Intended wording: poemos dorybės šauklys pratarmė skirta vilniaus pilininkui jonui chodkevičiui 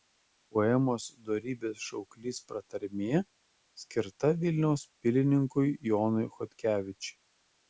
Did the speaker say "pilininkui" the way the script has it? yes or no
yes